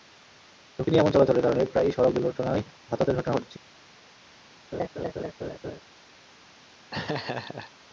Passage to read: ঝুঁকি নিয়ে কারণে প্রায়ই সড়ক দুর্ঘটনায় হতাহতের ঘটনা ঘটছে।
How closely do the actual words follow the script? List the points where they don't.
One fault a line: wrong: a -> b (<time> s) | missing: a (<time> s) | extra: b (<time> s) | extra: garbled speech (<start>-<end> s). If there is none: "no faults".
extra: এমন চলাচলের (1.0 s)